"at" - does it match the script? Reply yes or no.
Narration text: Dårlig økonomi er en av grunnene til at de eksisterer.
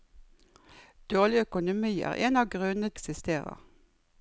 no